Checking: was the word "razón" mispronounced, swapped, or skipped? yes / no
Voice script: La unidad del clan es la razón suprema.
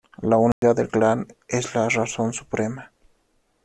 no